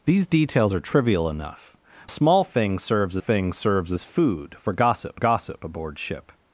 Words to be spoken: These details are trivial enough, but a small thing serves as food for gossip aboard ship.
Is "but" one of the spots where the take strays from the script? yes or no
yes